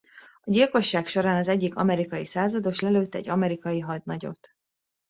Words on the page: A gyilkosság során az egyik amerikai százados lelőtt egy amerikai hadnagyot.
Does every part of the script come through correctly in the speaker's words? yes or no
yes